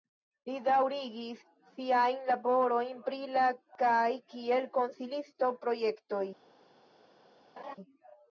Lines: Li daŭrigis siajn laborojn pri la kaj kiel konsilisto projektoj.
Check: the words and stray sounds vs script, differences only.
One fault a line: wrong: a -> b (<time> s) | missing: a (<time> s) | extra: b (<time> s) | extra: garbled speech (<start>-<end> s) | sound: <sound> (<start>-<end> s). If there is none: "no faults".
sound: laugh (7.6-7.8 s)